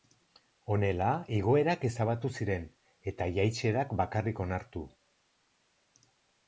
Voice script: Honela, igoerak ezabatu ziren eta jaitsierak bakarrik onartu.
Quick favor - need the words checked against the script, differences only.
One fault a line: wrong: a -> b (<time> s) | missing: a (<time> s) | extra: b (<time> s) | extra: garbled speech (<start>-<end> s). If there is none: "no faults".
no faults